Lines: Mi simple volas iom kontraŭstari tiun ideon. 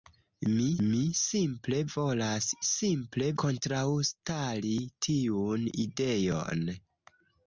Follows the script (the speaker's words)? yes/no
no